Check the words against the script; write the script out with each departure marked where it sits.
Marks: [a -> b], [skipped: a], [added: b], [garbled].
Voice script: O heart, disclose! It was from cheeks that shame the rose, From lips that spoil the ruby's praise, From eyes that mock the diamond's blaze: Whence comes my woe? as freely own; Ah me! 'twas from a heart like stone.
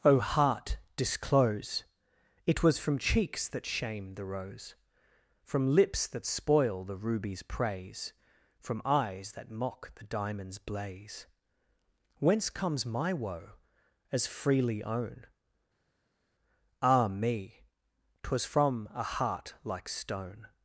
O heart, disclose! It was from cheeks that shame the rose, From lips that spoil the ruby's praise, From eyes that mock the diamond's blaze: Whence comes my woe? as freely own; Ah me! 'twas from a heart like stone.